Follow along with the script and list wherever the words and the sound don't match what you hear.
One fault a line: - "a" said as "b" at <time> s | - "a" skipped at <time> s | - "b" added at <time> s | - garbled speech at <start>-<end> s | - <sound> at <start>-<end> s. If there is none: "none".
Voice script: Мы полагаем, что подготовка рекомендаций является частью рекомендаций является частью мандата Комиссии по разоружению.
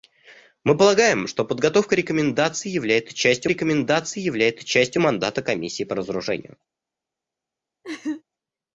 - laugh at 7.8-8.2 s